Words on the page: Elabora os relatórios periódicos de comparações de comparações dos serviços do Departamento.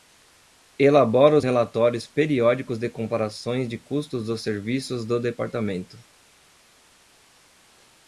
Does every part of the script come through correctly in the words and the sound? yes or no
no